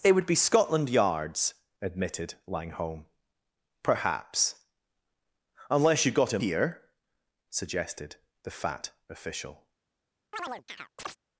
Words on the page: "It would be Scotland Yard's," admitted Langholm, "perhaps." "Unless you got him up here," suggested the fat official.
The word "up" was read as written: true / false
false